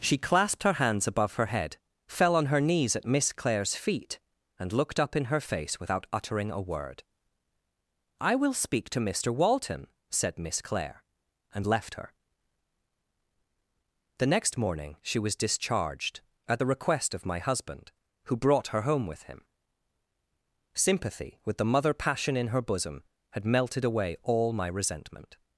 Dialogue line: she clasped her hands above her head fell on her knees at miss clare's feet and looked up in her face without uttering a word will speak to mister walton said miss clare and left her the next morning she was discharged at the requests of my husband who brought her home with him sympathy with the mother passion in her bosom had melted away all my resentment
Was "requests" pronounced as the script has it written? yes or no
no